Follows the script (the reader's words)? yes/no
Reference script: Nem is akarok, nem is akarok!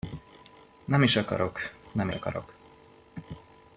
no